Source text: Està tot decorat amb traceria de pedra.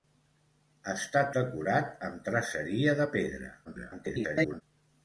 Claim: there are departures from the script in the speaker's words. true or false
true